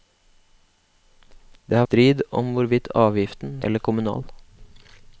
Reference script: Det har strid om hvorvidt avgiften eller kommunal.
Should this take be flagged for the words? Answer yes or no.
no